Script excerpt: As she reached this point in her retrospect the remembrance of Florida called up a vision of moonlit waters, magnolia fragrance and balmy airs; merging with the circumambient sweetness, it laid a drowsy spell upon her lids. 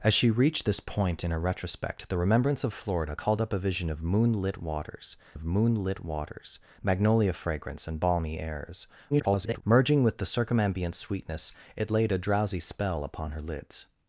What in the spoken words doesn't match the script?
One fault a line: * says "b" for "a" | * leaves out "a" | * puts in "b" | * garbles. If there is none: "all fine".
* puts in "of moonlit waters"
* garbles